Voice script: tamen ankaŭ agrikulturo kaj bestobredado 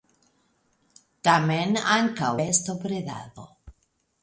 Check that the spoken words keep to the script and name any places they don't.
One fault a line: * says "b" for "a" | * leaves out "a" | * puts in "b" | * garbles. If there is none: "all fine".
* leaves out "agrikulturo kaj"